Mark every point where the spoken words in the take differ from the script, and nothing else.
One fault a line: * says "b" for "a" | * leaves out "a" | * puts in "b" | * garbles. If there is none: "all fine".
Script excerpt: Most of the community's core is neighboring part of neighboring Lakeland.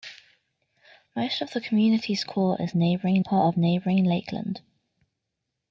all fine